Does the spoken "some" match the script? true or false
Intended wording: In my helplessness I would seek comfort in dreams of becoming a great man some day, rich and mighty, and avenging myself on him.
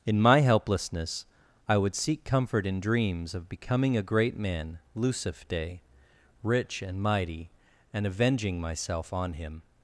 false